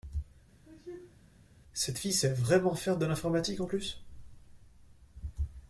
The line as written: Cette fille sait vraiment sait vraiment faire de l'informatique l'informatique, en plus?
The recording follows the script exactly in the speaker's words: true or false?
false